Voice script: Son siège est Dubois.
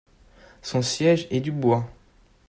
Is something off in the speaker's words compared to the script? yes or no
no